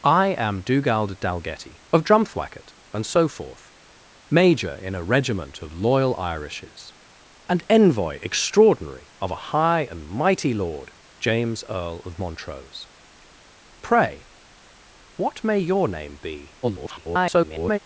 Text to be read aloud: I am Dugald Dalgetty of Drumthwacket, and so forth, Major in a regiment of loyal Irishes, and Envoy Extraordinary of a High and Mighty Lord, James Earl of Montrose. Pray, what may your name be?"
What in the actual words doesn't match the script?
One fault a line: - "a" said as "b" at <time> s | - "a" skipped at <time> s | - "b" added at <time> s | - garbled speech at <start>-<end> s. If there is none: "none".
- garbled speech at 16.6-17.8 s